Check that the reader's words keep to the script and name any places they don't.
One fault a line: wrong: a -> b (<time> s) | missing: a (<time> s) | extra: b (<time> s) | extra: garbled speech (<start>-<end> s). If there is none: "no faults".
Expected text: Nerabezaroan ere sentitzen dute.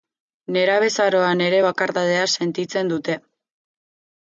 extra: bakardadea (1.7 s)